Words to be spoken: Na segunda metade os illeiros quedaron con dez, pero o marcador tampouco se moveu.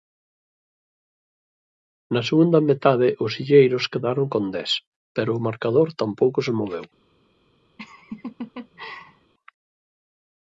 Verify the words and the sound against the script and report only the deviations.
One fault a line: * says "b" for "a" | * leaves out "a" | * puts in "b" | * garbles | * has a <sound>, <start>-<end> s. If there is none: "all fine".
* has a laugh, 7.8-9.3 s